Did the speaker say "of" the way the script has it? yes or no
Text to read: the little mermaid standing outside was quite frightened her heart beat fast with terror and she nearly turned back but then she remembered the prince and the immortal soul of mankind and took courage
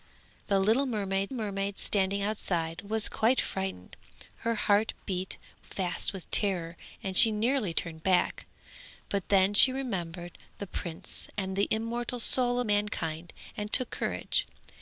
no